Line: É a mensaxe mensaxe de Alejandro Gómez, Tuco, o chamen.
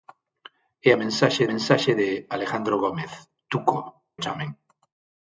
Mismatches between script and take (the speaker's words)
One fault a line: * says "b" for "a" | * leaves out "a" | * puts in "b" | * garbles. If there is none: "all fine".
all fine